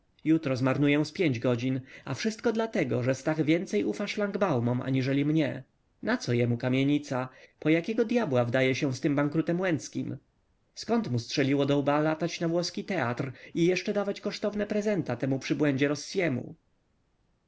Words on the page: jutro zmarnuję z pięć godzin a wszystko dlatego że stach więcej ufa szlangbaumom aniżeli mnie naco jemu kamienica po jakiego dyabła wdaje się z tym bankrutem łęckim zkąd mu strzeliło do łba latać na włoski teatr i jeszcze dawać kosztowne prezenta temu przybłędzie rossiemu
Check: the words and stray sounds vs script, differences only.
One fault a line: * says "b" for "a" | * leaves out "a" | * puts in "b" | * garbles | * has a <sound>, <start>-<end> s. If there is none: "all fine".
all fine